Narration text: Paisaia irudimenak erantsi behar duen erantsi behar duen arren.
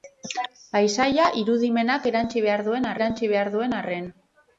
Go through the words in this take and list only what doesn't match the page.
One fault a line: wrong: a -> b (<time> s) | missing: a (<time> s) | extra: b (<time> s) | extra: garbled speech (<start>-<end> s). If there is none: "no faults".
no faults